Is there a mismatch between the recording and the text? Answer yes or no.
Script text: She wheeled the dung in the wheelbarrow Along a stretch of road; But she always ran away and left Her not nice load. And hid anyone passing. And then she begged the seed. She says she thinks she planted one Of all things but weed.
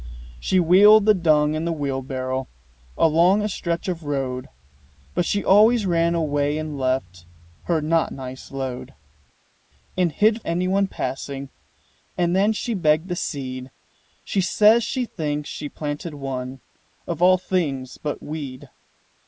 no